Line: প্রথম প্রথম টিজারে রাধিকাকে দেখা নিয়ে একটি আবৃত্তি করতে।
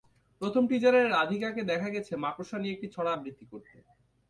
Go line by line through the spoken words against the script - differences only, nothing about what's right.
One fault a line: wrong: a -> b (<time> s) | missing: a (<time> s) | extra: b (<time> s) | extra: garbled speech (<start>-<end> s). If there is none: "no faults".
missing: প্রথম (0.6 s)
extra: গেছে মাকড়সা (1.9 s)
extra: ছড়া (2.9 s)